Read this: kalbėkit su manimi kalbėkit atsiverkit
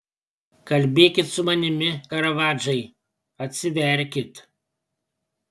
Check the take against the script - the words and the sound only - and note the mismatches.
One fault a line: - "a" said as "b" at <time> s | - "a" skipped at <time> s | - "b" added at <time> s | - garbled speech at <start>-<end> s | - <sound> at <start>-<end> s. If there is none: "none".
- "kalbėkit" said as "karavadžai" at 2.1 s